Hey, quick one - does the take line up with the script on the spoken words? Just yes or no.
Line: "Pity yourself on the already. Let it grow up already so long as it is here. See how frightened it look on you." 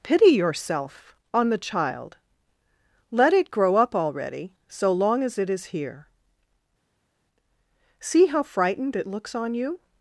no